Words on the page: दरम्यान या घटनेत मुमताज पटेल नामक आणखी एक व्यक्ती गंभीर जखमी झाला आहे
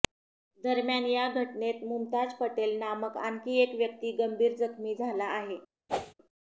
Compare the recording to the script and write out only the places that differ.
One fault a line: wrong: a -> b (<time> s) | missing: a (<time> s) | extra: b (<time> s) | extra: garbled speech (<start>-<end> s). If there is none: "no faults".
no faults